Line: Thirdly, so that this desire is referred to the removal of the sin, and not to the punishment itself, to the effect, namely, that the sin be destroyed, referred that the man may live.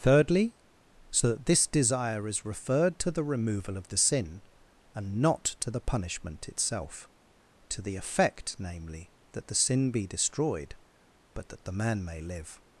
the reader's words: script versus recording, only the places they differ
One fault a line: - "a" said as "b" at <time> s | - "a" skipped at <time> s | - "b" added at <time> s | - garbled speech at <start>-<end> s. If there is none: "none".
- "referred" said as "but" at 11.3 s